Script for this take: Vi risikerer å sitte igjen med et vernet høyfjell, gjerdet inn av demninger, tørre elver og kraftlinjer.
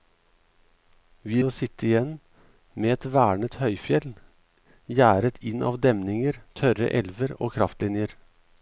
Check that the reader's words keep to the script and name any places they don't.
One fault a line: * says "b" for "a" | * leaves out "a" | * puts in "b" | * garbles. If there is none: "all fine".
* leaves out "risikerer"